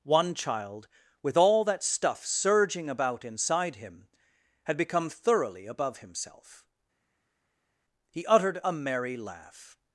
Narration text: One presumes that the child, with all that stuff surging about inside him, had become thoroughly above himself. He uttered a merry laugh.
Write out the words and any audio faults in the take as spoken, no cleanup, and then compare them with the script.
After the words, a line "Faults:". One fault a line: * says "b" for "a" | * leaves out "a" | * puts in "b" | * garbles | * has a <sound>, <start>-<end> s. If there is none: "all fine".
One child, with all that stuff surging about inside him, had become thoroughly above himself. He uttered a merry laugh.
Faults:
* leaves out "presumes that the"